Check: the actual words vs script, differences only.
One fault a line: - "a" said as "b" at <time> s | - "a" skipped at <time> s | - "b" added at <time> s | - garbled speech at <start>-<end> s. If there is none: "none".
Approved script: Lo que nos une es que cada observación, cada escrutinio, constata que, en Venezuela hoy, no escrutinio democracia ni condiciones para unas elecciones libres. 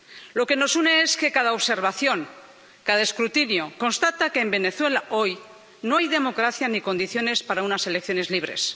- "escrutinio" said as "hay" at 6.0 s